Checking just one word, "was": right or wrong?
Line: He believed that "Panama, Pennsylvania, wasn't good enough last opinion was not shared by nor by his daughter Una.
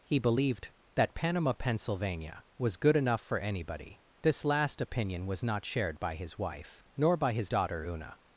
right